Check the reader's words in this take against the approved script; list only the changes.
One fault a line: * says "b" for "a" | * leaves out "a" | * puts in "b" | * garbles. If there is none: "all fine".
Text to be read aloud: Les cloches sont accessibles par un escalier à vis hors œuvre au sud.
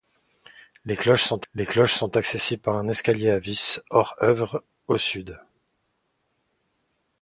* puts in "les cloches sont"